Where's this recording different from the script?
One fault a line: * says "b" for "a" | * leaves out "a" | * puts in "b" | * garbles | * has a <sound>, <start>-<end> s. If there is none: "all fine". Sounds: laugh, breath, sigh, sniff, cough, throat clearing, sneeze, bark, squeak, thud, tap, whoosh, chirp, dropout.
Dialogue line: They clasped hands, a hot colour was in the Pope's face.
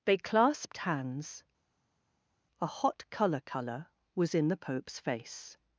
* puts in "colour"